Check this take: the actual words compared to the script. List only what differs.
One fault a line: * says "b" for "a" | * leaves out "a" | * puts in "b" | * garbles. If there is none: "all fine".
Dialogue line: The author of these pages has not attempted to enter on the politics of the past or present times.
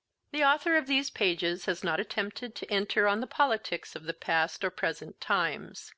all fine